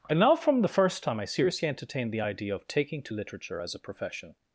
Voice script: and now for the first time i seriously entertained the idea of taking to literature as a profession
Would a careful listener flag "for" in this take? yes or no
yes